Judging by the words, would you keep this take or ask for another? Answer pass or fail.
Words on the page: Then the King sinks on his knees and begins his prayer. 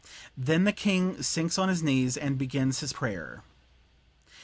pass